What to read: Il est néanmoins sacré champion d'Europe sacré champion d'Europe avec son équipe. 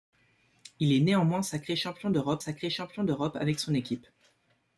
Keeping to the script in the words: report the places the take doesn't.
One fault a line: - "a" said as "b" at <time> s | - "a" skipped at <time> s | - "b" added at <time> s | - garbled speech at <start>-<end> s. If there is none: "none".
none